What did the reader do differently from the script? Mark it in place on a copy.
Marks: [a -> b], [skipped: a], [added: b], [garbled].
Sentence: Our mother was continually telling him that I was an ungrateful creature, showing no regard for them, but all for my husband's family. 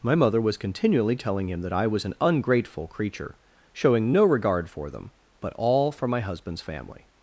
[Our -> My] mother was continually telling him that I was an ungrateful creature, showing no regard for them, but all for my husband's family.